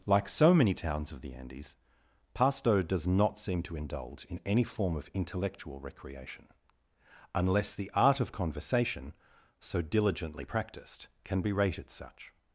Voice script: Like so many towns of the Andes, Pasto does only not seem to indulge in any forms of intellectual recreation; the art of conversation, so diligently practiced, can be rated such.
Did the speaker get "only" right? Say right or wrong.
wrong